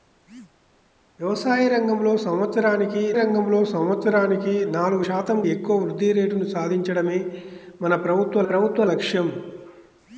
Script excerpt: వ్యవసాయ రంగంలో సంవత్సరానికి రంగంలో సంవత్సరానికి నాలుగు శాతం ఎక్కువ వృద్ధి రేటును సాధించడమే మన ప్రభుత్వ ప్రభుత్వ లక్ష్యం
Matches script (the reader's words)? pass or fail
pass